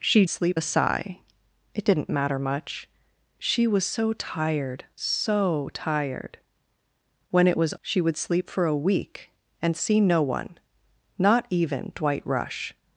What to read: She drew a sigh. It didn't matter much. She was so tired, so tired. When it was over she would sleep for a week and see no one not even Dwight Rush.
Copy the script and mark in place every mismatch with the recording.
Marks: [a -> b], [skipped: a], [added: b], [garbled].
She [drew -> sleep] a sigh. It didn't matter much. She was so tired, so tired. When it was [skipped: over] she would sleep for a week and see no one not even Dwight Rush.